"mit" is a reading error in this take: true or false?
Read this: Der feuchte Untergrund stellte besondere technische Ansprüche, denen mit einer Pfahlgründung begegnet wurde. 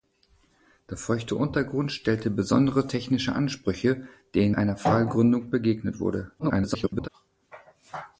true